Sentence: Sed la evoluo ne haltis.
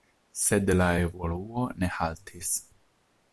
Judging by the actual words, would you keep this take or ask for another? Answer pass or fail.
pass